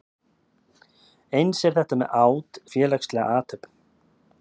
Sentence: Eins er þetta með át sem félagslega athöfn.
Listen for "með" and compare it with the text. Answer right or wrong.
right